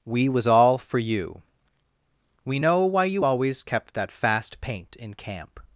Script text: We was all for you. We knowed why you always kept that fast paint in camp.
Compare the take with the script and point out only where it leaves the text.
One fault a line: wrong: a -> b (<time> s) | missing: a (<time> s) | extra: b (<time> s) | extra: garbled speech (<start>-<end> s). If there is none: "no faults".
wrong: knowed -> know (2.6 s)